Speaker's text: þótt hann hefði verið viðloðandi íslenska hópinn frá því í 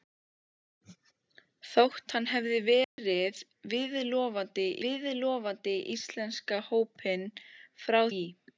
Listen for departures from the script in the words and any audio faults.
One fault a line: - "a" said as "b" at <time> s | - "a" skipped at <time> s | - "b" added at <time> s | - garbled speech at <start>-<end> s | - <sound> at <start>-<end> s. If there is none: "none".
- dropout at 2.8-3.0 s
- "viðloðandi" added at 4.9 s
- "því" skipped at 8.0 s